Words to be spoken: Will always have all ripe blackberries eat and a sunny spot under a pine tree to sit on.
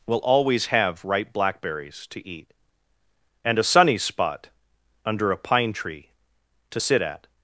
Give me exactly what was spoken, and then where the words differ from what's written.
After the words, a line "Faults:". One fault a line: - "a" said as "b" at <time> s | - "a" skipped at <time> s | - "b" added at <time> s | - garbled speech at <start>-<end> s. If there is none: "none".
Will always have ripe blackberries to eat and a sunny spot under a pine tree to sit at.
Faults:
- "all" skipped at 1.1 s
- "to" added at 2.1 s
- "on" said as "at" at 7.0 s